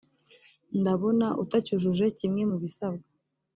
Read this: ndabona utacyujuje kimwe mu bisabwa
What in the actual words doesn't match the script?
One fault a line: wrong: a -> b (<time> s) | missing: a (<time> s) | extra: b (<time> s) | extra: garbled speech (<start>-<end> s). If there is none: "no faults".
no faults